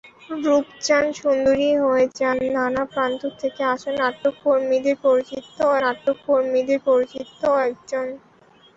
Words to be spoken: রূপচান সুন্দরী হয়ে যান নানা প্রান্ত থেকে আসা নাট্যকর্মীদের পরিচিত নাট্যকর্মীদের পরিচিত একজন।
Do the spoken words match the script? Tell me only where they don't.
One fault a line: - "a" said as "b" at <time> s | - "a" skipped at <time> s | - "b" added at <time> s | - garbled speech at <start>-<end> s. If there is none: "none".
none